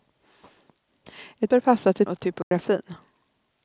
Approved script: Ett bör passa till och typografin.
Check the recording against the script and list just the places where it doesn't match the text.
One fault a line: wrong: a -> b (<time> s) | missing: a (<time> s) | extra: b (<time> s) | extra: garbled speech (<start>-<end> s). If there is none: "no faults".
no faults